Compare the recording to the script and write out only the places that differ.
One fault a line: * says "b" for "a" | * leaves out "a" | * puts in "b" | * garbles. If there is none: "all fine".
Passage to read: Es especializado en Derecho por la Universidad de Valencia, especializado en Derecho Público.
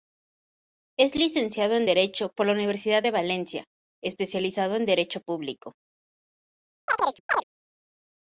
* says "licenciado" for "especializado"